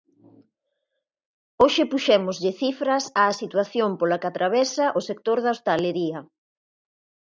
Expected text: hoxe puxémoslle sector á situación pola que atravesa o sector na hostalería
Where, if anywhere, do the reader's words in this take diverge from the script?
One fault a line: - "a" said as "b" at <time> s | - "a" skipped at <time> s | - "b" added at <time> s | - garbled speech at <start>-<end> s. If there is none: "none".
- "sector" said as "cifras" at 2.6 s
- "na" said as "da" at 5.4 s